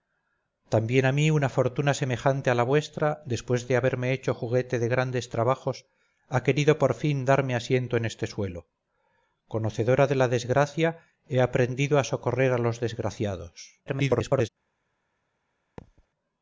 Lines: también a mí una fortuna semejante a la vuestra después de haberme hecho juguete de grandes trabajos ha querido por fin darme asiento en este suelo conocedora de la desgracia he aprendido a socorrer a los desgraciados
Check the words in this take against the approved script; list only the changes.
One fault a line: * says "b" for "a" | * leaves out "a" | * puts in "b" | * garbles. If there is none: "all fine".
* garbles